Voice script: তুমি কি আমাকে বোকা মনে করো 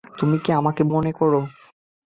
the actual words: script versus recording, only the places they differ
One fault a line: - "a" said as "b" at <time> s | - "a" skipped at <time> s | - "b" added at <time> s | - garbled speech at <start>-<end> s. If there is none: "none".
- "বোকা" skipped at 0.8 s